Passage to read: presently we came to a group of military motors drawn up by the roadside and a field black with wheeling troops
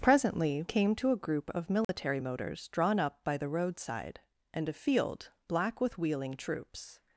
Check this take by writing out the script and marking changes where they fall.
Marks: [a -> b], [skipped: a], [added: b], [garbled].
presently [skipped: we] came to a group of military motors drawn up by the roadside and a field black with wheeling troops